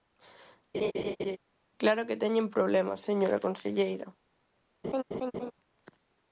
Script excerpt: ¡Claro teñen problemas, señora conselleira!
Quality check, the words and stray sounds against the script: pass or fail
fail